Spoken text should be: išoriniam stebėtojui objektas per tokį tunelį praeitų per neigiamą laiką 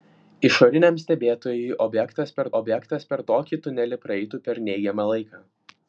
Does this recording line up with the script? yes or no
no